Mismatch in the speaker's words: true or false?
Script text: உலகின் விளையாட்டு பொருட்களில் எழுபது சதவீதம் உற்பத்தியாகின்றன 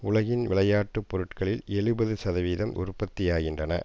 false